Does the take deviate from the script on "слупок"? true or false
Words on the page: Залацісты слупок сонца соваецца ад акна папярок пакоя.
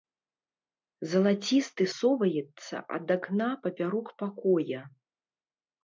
true